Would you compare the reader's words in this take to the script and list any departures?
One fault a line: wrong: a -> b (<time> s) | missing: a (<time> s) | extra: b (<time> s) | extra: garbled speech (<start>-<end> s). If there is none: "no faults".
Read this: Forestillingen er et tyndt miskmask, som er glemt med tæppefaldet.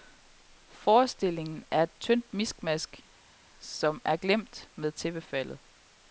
no faults